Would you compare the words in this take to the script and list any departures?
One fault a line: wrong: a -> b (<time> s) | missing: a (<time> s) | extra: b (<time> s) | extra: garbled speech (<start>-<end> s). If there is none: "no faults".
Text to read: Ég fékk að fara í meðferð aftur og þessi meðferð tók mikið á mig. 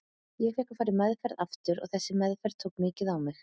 no faults